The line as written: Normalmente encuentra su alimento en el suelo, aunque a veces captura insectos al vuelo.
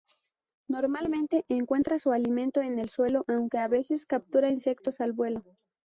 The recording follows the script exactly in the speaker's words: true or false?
true